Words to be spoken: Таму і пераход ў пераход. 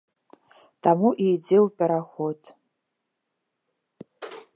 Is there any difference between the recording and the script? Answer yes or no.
yes